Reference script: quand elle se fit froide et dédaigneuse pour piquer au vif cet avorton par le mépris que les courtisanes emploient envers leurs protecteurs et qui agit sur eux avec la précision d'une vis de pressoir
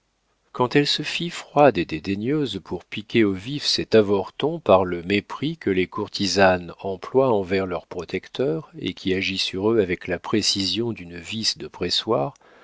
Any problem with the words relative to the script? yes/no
no